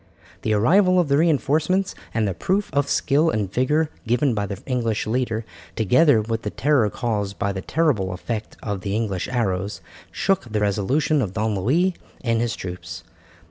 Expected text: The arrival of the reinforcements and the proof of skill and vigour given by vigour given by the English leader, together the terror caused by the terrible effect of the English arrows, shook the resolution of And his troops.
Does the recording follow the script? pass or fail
fail